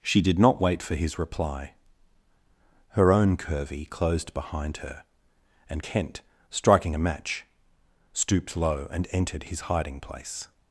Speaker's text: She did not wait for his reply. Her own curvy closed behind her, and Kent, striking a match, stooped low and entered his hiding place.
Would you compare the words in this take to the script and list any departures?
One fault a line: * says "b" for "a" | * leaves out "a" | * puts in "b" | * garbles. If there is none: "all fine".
all fine